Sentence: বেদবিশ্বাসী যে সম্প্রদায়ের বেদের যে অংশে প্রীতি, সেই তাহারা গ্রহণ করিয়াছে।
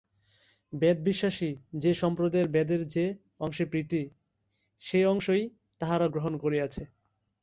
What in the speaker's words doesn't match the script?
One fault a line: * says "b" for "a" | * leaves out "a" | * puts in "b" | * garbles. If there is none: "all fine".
* puts in "অংশই"